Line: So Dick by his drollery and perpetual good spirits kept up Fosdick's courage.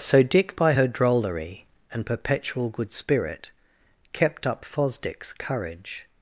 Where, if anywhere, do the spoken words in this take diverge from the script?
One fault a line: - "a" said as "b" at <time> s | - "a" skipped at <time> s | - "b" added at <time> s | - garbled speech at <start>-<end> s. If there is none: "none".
- "his" said as "her" at 0.7 s
- "spirits" said as "spirit" at 2.9 s